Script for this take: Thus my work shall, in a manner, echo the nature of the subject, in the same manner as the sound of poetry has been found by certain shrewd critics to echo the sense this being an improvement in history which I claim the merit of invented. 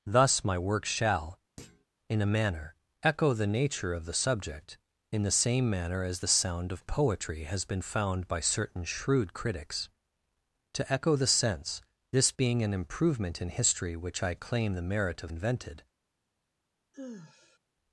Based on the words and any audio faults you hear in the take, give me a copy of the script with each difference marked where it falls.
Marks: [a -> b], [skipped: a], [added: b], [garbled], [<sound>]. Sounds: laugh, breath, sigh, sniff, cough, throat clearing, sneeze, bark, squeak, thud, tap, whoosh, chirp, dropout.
Thus my work shall, [thud] in a manner, echo the nature of the subject, in the same manner as the sound of poetry has been found by certain shrewd critics to echo the sense this being an improvement in history which I claim the merit of invented. [sigh]